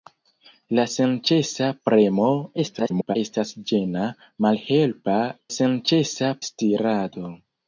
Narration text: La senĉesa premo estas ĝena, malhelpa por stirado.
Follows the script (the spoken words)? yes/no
no